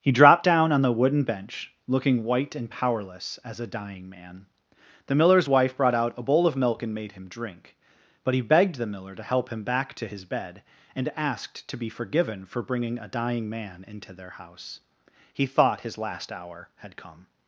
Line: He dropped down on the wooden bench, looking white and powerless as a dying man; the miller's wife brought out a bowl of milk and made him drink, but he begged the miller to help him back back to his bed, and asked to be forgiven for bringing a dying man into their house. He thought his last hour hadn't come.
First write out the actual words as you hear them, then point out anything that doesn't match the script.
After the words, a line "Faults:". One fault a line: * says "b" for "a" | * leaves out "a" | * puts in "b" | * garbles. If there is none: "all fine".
He dropped down on the wooden bench, looking white and powerless as a dying man; the miller's wife brought out a bowl of milk and made him drink, but he begged the miller to help him back to his bed, and asked to be forgiven for bringing a dying man into their house. He thought his last hour had come.
Faults:
* leaves out "back"
* says "had" for "hadn't"